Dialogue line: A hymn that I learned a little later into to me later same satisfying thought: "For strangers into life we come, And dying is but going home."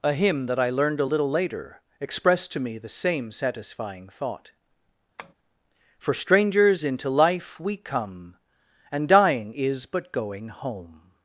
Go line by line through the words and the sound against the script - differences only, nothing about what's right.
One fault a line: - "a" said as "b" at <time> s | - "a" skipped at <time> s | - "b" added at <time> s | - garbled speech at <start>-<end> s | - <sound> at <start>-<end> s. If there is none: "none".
- "into" said as "expressed" at 2.0 s
- "later" said as "the" at 2.8 s
- tap at 5.2-5.3 s